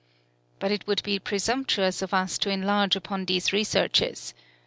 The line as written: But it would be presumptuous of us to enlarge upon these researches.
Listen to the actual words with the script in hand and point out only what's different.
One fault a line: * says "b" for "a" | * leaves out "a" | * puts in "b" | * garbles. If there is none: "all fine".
all fine